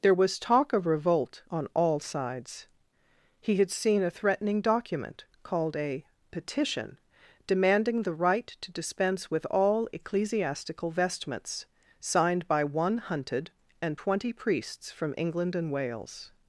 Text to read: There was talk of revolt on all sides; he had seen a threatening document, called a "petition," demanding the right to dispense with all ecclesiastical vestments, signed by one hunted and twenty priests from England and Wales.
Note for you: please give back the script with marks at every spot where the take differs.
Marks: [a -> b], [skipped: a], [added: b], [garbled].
There was talk of revolt on all sides; he had seen a threatening document, called a "petition," demanding the right to dispense with all ecclesiastical vestments, signed by one hunted and twenty priests from England and Wales.